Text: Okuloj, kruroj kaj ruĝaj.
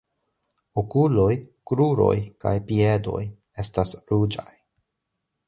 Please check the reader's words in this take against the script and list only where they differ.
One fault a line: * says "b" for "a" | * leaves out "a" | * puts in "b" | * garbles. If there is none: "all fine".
* puts in "piedoj estas"